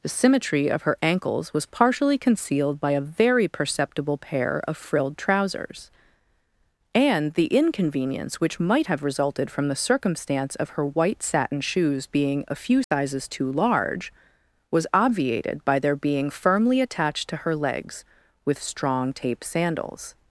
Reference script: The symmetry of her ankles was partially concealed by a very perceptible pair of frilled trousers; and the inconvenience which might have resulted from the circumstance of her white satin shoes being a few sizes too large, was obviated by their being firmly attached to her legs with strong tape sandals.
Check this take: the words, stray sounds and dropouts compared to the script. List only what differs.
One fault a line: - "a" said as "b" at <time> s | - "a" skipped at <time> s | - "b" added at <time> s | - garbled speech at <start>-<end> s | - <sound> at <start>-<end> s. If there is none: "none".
- dropout at 12.8-12.9 s